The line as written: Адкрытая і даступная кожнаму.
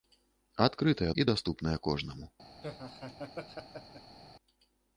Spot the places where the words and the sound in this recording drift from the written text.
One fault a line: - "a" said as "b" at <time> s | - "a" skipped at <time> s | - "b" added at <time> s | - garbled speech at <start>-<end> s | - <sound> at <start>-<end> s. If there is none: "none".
- laugh at 2.6-4.2 s